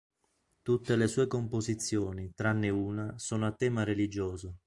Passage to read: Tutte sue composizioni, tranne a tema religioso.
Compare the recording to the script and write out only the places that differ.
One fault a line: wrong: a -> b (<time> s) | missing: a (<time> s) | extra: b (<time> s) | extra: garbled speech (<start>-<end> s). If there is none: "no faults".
extra: le (0.9 s)
extra: una sono (2.7 s)